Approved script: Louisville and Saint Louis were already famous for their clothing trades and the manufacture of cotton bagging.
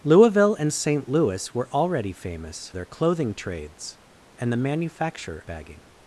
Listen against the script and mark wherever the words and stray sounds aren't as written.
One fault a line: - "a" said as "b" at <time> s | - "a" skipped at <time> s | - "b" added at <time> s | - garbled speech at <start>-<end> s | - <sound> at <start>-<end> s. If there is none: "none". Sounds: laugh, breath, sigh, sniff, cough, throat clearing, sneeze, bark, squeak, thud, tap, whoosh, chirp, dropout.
- "for" skipped at 2.7 s
- "of cotton" skipped at 5.4 s